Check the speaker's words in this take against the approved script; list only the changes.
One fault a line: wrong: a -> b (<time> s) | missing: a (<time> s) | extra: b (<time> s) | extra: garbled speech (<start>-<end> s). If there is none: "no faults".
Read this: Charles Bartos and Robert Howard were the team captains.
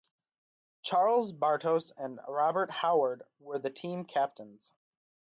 no faults